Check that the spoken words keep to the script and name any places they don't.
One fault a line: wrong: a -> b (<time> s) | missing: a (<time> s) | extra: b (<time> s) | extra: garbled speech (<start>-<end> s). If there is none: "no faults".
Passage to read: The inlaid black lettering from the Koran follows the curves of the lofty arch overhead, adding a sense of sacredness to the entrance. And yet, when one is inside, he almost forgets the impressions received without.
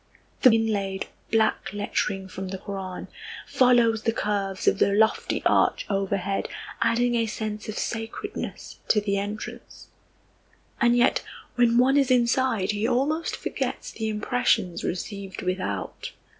no faults